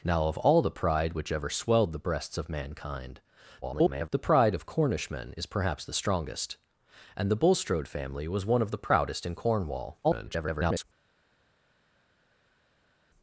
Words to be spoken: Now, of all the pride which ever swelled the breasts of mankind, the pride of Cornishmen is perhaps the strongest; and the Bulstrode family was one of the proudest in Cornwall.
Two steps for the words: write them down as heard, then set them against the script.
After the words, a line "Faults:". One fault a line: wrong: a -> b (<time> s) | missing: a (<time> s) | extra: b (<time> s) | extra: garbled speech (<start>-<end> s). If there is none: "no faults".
Now, of all the pride which ever swelled the breasts of mankind, [garbled] the pride of Cornishmen is perhaps the strongest; and the Bulstrode family was one of the proudest in Cornwall. [garbled]
Faults:
extra: garbled speech (3.6-4.1 s)
extra: garbled speech (10.0-10.8 s)